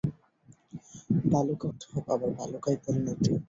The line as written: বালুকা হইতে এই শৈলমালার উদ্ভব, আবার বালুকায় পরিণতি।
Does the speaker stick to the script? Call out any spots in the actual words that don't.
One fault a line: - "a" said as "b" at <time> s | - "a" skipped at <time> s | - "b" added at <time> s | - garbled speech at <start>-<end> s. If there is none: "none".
- "হইতে এই শৈলমালার" skipped at 1.7 s